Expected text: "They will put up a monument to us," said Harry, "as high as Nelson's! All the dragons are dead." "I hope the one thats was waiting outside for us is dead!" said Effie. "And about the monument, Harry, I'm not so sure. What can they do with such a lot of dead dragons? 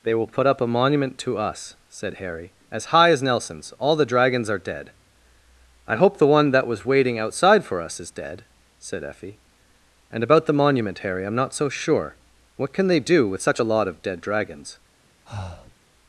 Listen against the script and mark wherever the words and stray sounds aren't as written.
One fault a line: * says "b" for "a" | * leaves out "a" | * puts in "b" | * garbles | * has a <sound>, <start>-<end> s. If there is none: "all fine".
* says "that" for "thats"
* has a breath, 15.3-15.8 s